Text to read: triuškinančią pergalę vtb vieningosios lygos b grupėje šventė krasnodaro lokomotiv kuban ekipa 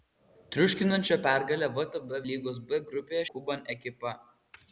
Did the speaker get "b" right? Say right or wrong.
right